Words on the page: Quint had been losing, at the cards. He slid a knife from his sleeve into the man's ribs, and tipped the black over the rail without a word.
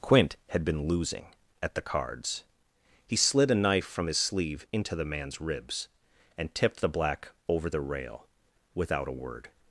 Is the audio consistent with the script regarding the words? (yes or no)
yes